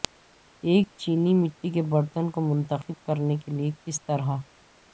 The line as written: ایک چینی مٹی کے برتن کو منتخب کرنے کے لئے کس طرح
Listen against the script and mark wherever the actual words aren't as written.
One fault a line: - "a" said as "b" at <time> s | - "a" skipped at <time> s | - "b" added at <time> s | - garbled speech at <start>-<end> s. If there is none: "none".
none